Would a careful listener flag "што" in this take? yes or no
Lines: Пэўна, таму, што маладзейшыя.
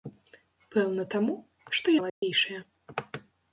no